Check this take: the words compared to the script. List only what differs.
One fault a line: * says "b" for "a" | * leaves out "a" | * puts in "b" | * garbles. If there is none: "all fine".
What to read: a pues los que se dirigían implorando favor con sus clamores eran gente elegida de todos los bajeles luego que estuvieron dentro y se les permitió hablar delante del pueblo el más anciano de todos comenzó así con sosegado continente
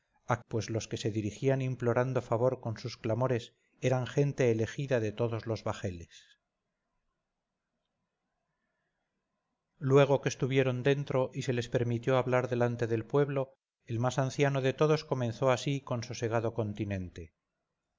all fine